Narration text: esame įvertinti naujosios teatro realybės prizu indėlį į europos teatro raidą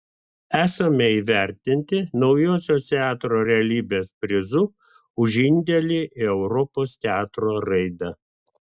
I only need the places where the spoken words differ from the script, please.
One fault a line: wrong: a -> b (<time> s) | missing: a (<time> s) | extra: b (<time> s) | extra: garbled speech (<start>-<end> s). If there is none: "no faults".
extra: už (5.3 s)